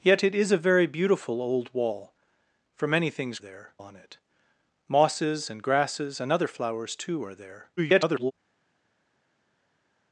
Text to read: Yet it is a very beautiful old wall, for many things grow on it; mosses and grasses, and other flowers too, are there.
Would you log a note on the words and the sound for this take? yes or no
yes